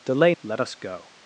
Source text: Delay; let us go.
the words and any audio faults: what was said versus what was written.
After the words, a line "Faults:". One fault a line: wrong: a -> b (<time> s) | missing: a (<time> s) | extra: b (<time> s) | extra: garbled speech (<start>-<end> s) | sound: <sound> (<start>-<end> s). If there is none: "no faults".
Delay; let us go.
Faults:
no faults